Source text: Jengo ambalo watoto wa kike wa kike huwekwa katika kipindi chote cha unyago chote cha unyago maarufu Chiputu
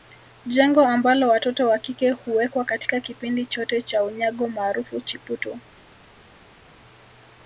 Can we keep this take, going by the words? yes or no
no